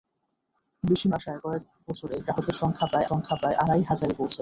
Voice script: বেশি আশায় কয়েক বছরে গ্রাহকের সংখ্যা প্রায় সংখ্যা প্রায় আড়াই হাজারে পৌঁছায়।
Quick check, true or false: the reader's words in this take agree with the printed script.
true